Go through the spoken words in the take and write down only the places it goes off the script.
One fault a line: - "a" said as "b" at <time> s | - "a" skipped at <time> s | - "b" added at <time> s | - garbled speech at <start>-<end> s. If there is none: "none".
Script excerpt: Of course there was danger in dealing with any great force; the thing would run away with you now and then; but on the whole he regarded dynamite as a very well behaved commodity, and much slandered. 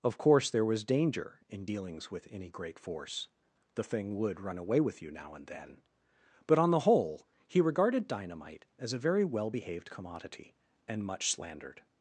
- "dealing" said as "dealings" at 1.6 s